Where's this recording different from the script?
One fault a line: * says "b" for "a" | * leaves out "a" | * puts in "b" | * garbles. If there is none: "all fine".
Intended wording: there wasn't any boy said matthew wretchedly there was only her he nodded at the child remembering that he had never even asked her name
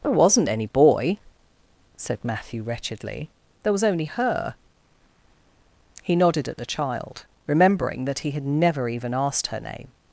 all fine